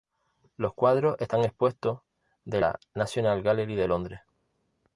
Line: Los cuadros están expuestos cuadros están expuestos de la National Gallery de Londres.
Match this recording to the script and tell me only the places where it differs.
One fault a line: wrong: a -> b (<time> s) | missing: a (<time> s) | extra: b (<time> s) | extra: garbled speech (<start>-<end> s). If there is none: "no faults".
missing: cuadros están expuestos (2.0 s)